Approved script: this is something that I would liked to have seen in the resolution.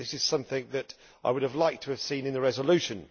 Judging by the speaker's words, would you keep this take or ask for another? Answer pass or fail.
fail